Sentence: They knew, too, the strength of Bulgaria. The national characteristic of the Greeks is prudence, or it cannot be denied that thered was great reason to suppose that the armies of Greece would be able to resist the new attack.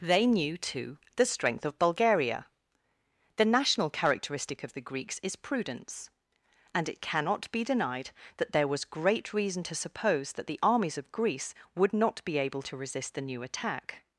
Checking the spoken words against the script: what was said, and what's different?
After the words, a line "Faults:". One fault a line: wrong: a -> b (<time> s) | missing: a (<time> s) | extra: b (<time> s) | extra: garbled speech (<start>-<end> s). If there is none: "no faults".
They knew, too, the strength of Bulgaria. The national characteristic of the Greeks is prudence, and it cannot be denied that there was great reason to suppose that the armies of Greece would not be able to resist the new attack.
Faults:
wrong: or -> and (6.7 s)
wrong: thered -> there (8.5 s)
extra: not (11.9 s)